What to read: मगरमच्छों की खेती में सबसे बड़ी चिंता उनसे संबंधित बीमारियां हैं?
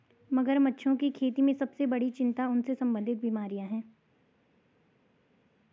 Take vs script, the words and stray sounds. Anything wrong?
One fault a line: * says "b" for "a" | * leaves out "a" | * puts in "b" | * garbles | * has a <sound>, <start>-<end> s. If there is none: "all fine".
all fine